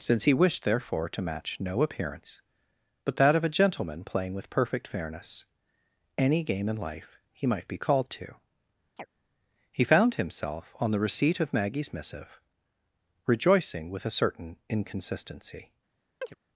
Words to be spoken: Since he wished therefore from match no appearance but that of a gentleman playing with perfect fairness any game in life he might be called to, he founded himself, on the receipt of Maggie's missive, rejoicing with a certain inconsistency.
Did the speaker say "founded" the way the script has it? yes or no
no